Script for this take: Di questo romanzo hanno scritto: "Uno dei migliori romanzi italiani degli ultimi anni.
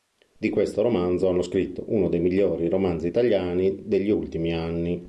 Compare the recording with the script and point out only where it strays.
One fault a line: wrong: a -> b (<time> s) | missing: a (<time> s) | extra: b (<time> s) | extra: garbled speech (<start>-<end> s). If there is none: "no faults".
no faults